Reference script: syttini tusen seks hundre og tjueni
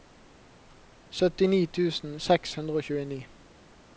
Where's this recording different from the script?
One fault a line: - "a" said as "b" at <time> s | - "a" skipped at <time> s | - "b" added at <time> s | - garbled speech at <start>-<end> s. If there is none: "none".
none